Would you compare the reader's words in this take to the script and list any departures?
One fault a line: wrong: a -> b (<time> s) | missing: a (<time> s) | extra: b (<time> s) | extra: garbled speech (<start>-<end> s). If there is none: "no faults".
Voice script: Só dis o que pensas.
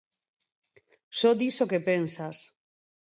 no faults